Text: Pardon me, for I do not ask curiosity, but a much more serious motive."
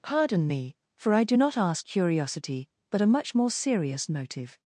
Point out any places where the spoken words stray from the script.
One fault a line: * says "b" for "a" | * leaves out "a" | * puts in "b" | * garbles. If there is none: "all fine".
all fine